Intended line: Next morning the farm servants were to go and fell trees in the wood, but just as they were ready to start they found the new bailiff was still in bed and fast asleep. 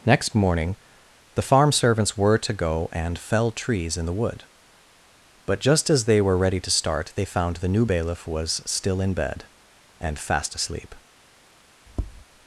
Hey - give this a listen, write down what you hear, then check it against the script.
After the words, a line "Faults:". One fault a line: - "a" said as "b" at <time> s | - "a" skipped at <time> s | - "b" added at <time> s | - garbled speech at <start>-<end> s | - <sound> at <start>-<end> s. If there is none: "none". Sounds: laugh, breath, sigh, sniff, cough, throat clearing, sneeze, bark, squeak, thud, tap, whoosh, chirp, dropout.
Next morning the farm servants were to go and fell trees in the wood, but just as they were ready to start they found the new bailiff was still in bed and fast asleep.
Faults:
- tap at 11.9-12.2 s